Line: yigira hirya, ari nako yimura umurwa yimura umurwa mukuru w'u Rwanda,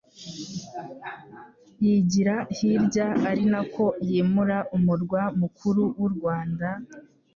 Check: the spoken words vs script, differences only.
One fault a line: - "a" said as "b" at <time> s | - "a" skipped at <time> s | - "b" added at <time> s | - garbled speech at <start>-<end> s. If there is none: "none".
- "yimura umurwa" skipped at 5.2 s